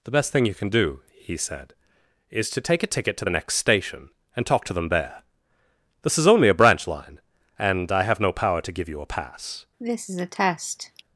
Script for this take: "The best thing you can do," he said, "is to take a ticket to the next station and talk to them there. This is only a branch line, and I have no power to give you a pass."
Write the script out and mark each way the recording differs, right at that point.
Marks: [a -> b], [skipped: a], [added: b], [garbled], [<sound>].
"The best thing you can do," he said, "is to take a ticket to the next station and talk to them there. This is only a branch line, and I have no power to give you a pass." [cough]